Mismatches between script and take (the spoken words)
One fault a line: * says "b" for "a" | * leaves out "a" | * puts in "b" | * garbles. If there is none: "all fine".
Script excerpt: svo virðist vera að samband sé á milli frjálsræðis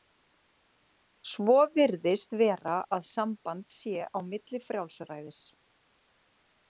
all fine